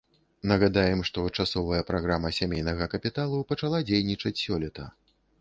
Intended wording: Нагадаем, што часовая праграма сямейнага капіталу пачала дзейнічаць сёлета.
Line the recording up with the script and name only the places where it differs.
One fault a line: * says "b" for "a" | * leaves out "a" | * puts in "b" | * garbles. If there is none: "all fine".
all fine